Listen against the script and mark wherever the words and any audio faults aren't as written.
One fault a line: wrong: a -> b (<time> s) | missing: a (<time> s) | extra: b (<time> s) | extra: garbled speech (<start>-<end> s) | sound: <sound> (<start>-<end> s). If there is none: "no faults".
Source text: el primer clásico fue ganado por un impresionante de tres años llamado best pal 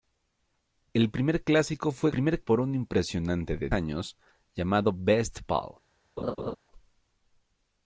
wrong: ganado -> primer (2.1 s)
missing: tres (3.7 s)
sound: laugh (6.2-6.6 s)